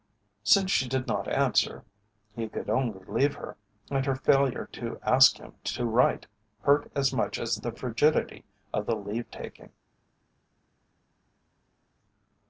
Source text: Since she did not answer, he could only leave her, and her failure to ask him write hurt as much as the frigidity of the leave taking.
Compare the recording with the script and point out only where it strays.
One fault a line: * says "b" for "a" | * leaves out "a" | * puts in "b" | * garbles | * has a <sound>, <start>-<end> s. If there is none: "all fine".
* puts in "to"